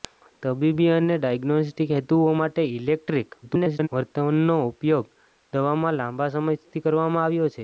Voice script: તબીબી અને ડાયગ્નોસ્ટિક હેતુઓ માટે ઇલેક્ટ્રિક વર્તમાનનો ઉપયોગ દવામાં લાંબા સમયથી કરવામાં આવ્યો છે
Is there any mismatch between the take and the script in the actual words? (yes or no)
yes